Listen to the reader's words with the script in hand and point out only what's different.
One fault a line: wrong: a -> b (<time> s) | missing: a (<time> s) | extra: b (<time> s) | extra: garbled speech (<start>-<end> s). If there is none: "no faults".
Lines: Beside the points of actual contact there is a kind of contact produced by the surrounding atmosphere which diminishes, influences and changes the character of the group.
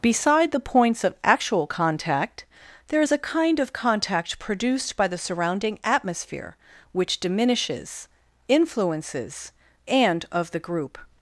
missing: changes the character (10.3 s)